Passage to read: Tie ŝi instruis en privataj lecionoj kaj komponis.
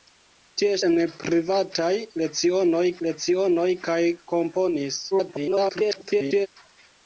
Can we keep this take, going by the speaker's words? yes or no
no